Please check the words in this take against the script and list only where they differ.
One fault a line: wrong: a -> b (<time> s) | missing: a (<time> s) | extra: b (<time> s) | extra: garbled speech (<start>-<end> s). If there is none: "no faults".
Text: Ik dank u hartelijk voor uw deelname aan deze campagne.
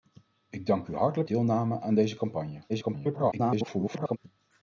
missing: voor uw (1.3 s)
extra: garbled speech (2.7-4.2 s)